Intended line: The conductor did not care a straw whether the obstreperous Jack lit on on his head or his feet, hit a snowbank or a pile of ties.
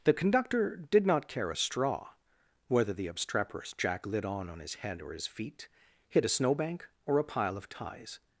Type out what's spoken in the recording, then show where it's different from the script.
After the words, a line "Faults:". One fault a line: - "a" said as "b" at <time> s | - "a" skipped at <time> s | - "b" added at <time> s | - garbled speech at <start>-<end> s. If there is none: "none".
The conductor did not care a straw whether the obstreperous Jack lit on on his head or his feet, hit a snowbank or a pile of ties.
Faults:
none